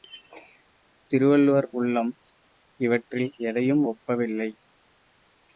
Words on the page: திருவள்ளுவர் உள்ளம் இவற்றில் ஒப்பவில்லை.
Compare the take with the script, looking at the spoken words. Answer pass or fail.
fail